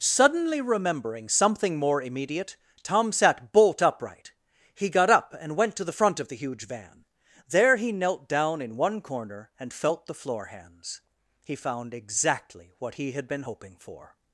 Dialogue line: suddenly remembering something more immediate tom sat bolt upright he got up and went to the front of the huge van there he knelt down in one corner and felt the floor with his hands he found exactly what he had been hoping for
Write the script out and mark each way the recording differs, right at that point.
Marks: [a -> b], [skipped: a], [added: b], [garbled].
suddenly remembering something more immediate tom sat bolt upright he got up and went to the front of the huge van there he knelt down in one corner and felt the floor [skipped: with his] hands he found exactly what he had been hoping for